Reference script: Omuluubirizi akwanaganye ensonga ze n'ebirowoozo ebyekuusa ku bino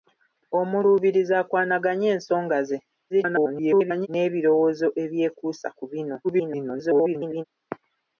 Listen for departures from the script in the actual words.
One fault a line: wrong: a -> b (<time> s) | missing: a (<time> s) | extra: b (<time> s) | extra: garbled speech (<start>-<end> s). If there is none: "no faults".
extra: garbled speech (3.1-4.1 s)
extra: garbled speech (6.2-7.4 s)